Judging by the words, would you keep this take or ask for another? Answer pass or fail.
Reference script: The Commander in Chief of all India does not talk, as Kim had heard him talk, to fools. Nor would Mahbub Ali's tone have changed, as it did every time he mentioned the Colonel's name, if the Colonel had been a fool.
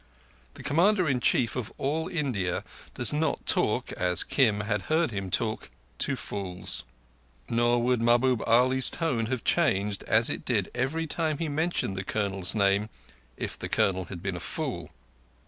pass